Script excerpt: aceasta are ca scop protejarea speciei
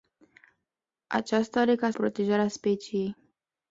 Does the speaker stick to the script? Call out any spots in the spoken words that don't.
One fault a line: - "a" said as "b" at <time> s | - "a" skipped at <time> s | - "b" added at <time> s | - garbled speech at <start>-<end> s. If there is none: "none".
- "scop" skipped at 1.9 s